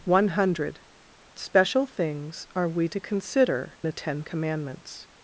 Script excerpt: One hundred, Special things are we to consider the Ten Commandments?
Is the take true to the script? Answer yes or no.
yes